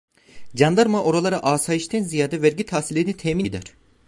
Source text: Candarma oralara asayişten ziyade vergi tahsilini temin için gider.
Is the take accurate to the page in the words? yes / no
no